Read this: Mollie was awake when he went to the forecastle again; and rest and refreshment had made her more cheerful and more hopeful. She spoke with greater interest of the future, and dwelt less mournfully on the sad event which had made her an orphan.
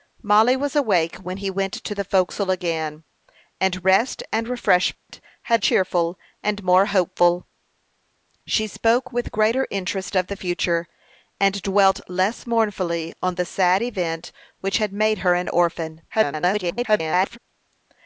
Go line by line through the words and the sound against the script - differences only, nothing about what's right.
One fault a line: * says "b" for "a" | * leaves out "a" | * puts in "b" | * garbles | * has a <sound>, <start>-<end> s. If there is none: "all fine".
* has a dropout, 4.9-5.1 s
* leaves out "made her more"
* garbles